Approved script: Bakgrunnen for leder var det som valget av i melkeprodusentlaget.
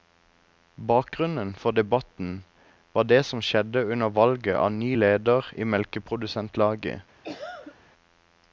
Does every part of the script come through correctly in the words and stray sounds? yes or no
no